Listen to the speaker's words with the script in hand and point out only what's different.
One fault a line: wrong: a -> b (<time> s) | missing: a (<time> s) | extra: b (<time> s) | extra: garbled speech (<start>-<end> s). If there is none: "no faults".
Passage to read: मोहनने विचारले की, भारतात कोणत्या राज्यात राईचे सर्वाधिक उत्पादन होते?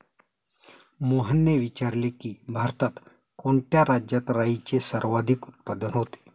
no faults